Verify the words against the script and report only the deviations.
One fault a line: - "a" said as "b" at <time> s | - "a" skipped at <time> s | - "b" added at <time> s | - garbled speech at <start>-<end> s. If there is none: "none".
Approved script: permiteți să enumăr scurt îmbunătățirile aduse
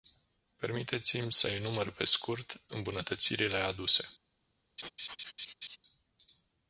- "mi" added at 1.2 s
- "pe" added at 1.9 s